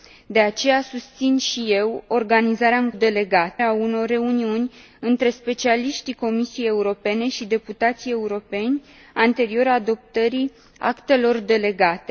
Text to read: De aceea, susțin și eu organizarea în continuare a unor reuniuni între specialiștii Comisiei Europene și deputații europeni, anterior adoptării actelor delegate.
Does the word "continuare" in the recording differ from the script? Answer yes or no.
yes